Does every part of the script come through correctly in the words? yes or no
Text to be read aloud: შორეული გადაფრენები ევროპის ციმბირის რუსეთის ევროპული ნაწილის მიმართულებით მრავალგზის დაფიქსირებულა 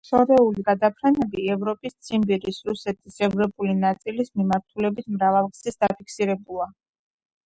yes